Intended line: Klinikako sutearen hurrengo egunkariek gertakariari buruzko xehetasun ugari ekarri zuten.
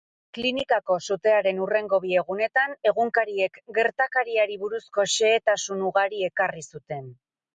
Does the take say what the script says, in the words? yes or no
no